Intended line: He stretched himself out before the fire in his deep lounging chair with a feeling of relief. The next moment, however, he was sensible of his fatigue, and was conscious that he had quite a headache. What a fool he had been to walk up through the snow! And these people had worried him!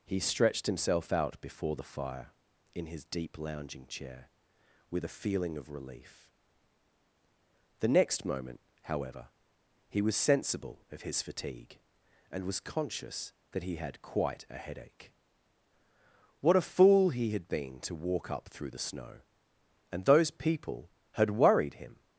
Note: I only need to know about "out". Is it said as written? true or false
true